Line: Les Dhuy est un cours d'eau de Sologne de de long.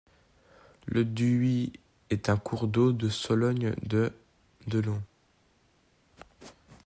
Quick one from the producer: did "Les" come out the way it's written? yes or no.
no